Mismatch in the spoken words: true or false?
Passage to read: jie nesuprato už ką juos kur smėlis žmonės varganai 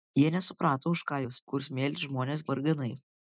false